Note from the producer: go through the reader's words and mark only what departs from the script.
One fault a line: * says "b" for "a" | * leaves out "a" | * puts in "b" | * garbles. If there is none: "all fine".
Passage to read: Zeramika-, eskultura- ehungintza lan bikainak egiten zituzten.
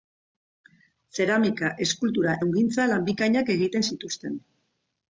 all fine